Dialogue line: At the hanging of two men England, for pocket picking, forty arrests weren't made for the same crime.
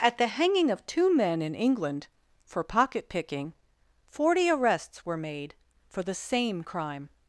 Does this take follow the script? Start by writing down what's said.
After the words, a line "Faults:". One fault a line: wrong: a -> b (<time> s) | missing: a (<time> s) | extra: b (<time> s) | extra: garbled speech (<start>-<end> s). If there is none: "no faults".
At the hanging of two men in England, for pocket picking, forty arrests were made for the same crime.
Faults:
extra: in (1.4 s)
wrong: weren't -> were (5.0 s)